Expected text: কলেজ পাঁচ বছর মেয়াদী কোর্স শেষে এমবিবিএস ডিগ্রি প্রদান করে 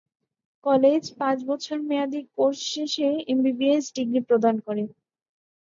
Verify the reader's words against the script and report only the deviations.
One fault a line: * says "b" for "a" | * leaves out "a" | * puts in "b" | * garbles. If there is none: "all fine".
all fine